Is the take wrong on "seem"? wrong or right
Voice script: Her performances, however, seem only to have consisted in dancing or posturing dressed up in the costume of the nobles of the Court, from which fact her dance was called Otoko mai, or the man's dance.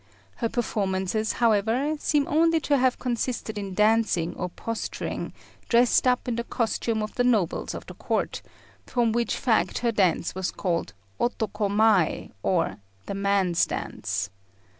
right